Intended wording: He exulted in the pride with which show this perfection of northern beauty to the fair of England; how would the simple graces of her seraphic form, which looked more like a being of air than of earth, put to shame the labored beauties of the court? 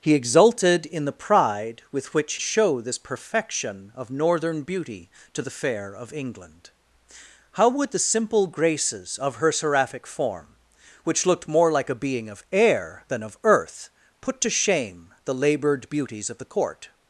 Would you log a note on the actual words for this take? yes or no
no